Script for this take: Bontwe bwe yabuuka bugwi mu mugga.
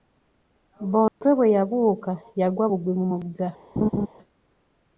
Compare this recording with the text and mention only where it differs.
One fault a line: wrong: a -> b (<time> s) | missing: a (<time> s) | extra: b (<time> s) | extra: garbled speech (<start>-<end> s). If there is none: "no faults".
extra: yagwa (2.4 s)